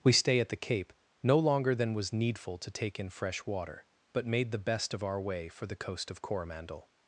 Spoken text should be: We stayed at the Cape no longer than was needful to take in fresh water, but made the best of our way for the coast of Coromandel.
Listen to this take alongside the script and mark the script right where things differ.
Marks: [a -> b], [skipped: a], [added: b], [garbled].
We [stayed -> stay] at the Cape no longer than was needful to take in fresh water, but made the best of our way for the coast of Coromandel.